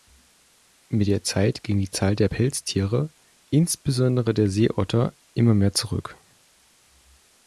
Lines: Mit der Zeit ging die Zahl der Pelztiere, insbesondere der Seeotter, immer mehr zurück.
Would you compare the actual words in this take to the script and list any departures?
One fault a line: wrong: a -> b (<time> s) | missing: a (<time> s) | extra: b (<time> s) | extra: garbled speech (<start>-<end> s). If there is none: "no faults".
no faults